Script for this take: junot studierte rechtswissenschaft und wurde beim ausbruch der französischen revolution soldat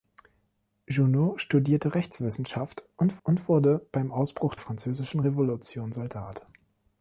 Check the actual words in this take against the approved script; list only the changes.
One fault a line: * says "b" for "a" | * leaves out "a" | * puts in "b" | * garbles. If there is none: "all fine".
* puts in "und"
* leaves out "der"